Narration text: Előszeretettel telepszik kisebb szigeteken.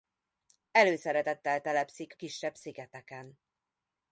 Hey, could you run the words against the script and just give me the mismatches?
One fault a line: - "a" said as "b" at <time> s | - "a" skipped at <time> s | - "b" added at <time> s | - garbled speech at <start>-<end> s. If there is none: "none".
none